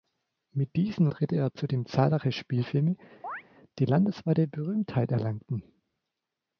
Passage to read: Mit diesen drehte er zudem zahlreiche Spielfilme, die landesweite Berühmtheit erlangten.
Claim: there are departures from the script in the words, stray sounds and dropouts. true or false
true